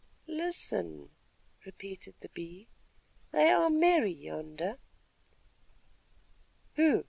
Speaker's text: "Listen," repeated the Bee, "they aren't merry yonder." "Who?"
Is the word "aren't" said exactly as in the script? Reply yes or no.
no